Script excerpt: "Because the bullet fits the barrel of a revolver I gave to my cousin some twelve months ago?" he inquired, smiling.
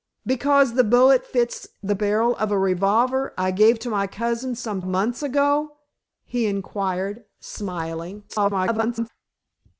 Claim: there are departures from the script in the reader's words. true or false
true